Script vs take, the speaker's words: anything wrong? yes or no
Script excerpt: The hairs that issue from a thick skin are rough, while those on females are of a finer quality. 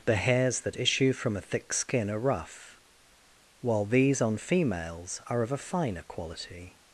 yes